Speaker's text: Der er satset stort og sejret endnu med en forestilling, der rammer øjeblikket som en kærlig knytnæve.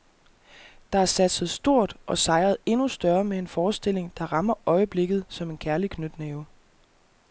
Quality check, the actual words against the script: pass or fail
fail